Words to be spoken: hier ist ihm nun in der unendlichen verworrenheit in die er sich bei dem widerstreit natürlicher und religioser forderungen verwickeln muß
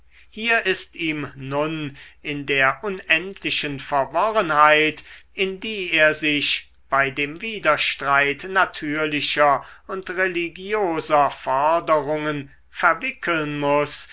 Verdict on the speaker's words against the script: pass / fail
pass